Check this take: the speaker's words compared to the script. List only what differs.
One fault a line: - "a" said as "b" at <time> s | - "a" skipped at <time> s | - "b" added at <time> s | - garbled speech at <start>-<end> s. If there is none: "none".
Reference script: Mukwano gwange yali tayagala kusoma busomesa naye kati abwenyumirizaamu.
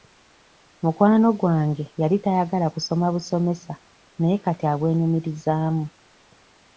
none